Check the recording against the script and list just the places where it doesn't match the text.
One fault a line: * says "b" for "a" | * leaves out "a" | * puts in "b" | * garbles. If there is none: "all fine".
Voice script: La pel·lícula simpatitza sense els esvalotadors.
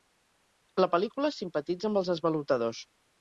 * says "amb" for "sense"